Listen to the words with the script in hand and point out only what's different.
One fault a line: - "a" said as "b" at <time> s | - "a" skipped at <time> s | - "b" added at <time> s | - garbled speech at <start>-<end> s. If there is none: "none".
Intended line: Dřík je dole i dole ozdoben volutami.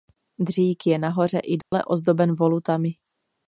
- "dole" said as "nahoře" at 1.0 s